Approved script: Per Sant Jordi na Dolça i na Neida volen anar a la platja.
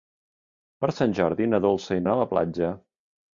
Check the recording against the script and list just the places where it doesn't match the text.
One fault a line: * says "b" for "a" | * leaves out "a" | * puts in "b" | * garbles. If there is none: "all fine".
* leaves out "na Neida volen"